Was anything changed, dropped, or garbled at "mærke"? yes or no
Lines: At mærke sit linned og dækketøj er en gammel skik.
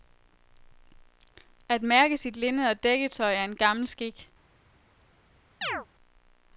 no